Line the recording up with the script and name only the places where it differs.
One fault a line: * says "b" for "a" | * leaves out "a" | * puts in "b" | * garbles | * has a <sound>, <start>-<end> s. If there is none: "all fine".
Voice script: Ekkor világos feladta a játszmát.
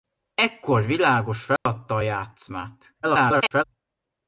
* has a dropout, 1.6-1.7 s
* garbles